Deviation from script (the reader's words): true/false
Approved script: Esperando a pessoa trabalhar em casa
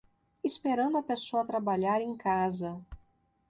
false